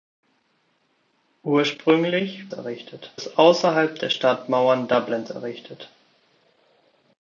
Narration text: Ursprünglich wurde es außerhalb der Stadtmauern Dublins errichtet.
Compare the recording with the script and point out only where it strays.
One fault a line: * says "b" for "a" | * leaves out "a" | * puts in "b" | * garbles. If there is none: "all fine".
* says "errichtet" for "wurde"